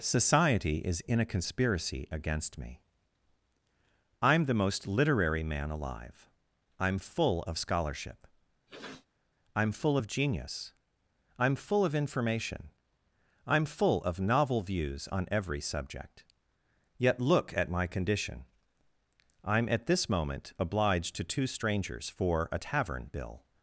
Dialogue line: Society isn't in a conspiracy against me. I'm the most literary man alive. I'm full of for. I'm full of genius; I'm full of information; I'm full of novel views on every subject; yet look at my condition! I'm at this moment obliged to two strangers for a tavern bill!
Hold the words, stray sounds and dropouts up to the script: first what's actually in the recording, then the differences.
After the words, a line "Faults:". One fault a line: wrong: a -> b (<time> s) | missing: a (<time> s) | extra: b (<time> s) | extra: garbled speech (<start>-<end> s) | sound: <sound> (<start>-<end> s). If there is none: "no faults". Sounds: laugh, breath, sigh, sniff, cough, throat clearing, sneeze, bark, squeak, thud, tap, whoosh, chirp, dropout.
Society is in a conspiracy against me. I'm the most literary man alive. I'm full of scholarship. I'm full of genius; I'm full of information; I'm full of novel views on every subject; yet look at my condition! I'm at this moment obliged to two strangers for a tavern bill!
Faults:
wrong: isn't -> is (0.8 s)
wrong: for -> scholarship (7.6 s)
sound: sniff (8.7-9.1 s)